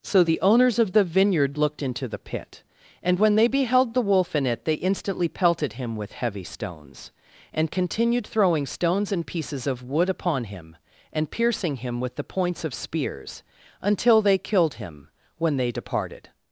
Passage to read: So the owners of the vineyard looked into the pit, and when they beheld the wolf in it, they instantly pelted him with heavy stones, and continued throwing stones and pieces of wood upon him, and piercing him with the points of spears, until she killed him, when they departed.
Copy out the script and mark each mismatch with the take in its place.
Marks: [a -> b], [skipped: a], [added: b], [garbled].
So the owners of the vineyard looked into the pit, and when they beheld the wolf in it, they instantly pelted him with heavy stones, and continued throwing stones and pieces of wood upon him, and piercing him with the points of spears, until [she -> they] killed him, when they departed.